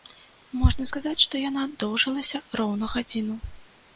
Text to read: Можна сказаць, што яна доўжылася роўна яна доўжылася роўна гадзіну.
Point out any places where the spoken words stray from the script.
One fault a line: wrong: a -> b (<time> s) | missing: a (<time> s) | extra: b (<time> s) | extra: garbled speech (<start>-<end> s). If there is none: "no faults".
missing: яна доўжылася роўна (2.9 s)